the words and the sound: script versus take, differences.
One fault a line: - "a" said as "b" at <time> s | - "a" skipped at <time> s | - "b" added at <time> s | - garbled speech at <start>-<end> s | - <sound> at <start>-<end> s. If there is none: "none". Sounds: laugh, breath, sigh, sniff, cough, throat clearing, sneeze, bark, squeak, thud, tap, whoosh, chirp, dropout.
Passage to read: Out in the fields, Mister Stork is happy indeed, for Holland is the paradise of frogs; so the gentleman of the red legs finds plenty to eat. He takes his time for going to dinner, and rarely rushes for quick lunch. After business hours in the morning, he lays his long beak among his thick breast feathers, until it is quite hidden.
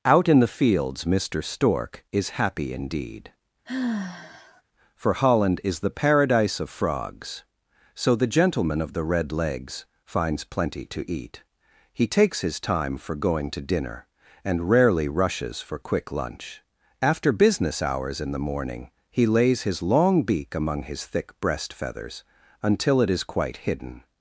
- sigh at 3.7-4.6 s